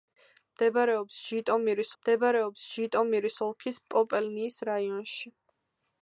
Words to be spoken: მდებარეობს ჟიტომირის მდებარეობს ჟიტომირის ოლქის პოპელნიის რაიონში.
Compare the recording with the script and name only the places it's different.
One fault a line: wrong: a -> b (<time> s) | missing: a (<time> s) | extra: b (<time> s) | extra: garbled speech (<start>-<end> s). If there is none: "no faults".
no faults